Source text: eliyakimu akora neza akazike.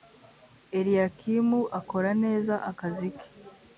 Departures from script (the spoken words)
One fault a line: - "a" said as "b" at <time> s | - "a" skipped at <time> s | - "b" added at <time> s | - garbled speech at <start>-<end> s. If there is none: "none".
none